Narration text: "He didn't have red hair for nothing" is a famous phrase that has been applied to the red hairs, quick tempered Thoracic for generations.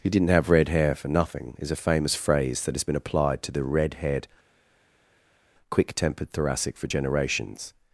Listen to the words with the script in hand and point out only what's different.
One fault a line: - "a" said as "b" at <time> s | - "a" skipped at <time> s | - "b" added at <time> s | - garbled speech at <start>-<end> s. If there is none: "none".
- "hairs" said as "haired" at 4.0 s